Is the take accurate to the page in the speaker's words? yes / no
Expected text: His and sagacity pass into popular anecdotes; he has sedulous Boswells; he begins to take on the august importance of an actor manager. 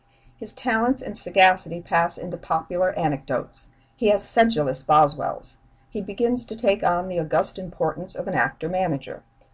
no